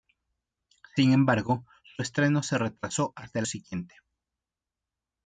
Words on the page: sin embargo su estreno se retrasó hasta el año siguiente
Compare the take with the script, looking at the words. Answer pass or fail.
fail